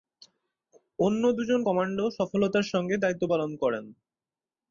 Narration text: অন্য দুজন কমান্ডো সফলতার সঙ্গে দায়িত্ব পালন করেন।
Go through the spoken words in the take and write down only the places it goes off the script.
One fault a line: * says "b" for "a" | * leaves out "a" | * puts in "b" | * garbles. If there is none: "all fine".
all fine